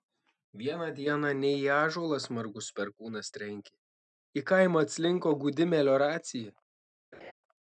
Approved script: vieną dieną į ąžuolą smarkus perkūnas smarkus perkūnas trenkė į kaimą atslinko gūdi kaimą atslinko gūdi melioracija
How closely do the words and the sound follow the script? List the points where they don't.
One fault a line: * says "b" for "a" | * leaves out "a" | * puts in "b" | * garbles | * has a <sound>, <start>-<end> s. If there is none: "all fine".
* puts in "ne"
* leaves out "smarkus perkūnas"
* leaves out "kaimą atslinko gūdi"
* has a laugh, 7.1-7.3 s